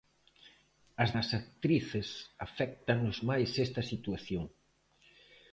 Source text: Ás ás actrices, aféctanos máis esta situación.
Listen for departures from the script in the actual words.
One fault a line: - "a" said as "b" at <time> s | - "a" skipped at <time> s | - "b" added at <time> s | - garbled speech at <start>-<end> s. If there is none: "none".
none